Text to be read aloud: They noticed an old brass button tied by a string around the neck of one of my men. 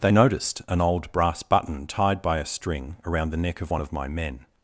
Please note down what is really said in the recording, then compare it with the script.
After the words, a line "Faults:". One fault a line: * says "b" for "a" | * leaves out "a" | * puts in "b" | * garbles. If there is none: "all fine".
They noticed an old brass button tied by a string around the neck of one of my men.
Faults:
all fine